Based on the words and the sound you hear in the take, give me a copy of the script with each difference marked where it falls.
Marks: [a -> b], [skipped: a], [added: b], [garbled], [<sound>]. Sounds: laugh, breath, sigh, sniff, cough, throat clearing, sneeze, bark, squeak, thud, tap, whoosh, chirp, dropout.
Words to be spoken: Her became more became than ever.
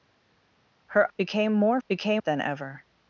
Her became more became than ever.